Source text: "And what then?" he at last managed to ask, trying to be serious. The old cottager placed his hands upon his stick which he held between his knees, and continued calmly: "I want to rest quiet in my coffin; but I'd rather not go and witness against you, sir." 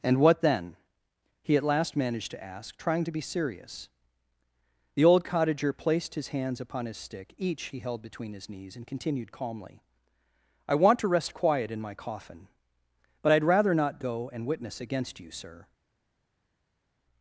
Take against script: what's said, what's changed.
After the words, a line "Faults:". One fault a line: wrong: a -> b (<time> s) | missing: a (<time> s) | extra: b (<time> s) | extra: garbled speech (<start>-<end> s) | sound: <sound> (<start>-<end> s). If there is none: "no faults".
"And what then?" he at last managed to ask, trying to be serious. The old cottager placed his hands upon his stick each he held between his knees, and continued calmly: "I want to rest quiet in my coffin; but I'd rather not go and witness against you, sir."
Faults:
wrong: which -> each (7.4 s)